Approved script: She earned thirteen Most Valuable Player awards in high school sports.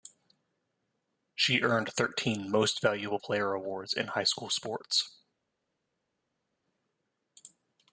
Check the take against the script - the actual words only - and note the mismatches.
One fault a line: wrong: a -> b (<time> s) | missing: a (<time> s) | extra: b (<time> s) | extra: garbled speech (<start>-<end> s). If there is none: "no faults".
no faults